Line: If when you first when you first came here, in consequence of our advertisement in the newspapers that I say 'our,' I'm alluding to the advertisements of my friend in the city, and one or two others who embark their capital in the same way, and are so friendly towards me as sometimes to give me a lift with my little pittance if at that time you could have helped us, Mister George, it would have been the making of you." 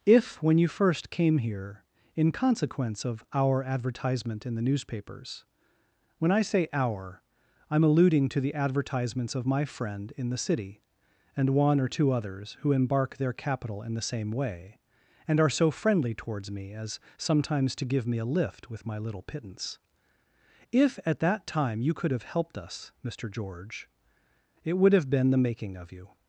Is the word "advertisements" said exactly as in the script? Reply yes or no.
yes